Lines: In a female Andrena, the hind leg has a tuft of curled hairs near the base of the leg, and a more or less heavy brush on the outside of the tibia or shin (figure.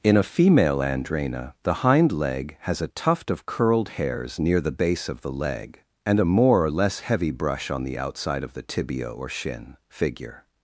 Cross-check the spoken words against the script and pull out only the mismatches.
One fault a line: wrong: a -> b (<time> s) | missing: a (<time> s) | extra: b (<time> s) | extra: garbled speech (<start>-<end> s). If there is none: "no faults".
no faults